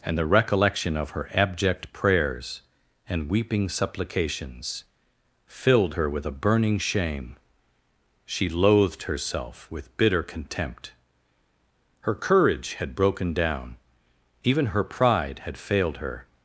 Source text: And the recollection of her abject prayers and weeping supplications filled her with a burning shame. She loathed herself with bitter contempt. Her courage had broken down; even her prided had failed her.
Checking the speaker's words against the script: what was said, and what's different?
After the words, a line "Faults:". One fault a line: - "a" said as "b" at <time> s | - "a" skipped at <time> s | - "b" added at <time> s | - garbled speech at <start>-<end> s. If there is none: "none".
And the recollection of her abject prayers and weeping supplications filled her with a burning shame. She loathed herself with bitter contempt. Her courage had broken down; even her pride had failed her.
Faults:
- "prided" said as "pride" at 14.8 s